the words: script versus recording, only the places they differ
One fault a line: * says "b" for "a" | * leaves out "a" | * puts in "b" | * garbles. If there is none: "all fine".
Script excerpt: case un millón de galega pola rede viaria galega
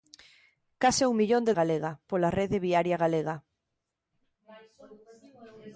all fine